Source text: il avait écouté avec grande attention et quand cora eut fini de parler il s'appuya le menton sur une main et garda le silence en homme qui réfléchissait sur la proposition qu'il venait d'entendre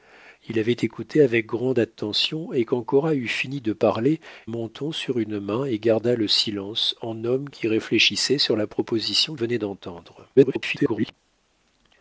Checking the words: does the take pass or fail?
fail